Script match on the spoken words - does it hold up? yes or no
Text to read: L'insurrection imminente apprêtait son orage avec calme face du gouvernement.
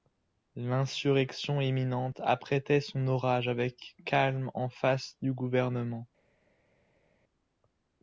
no